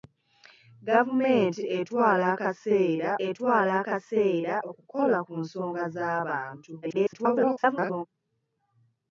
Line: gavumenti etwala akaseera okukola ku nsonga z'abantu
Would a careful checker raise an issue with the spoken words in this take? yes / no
yes